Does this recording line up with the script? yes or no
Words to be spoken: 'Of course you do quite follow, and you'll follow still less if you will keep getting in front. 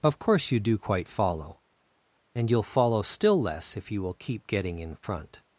yes